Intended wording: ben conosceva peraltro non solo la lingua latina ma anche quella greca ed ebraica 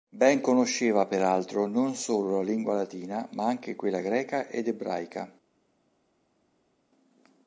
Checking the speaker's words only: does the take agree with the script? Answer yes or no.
yes